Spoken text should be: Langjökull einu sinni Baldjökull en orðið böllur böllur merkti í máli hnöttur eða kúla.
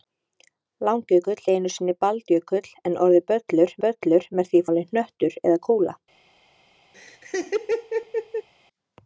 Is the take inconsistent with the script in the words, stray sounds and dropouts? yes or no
yes